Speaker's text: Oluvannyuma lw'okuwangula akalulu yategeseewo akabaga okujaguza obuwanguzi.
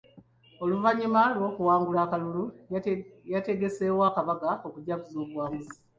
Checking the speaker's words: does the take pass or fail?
pass